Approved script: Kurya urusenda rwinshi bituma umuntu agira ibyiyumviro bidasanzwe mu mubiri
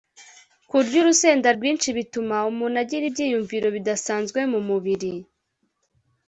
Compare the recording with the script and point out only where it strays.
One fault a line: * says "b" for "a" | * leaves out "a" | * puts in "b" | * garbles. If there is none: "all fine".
all fine